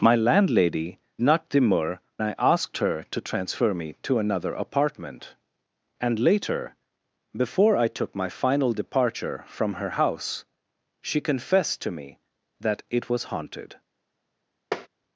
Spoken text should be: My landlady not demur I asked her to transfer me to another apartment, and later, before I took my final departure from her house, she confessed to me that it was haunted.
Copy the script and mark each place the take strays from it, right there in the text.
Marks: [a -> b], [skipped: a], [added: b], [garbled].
My landlady not demur I asked her to transfer me to another apartment, and later, before I took my final departure from her house, she confessed to me that it was haunted.